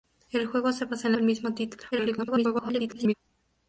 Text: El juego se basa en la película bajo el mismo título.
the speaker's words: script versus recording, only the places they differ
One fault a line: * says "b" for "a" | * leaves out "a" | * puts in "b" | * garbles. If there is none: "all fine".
* leaves out "la película bajo"
* garbles